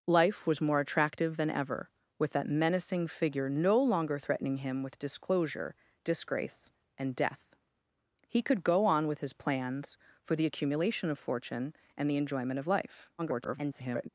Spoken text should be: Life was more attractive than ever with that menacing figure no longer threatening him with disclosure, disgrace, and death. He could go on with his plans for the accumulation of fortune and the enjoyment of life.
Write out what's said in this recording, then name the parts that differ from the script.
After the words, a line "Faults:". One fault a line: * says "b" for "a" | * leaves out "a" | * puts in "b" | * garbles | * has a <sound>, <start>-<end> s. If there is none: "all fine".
Life was more attractive than ever with that menacing figure no longer threatening him with disclosure, disgrace, and death. He could go on with his plans for the accumulation of fortune and the enjoyment of life. [garbled]
Faults:
* garbles